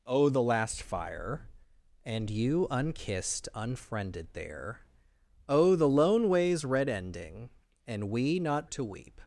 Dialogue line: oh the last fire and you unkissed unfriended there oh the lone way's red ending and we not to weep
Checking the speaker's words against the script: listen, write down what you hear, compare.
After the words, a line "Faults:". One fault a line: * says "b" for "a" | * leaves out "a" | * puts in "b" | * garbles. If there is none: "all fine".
oh the last fire and you unkissed unfriended there oh the lone way's red ending and we not to weep
Faults:
all fine